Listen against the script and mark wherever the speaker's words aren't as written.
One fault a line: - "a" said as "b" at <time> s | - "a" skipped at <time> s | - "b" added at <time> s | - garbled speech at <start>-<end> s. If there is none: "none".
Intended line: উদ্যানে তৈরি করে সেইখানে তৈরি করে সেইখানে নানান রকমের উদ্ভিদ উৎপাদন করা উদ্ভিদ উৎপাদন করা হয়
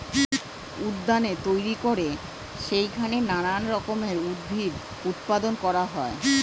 - "তৈরি করে সেইখানে" skipped at 3.2 s
- "উদ্ভিদ উৎপাদন করা" skipped at 5.8 s